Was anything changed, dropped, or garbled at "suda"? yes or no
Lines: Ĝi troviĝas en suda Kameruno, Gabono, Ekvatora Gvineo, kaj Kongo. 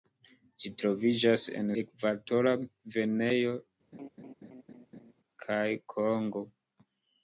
yes